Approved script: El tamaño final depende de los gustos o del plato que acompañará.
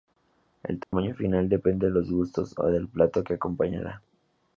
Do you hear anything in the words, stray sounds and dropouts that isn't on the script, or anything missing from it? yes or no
yes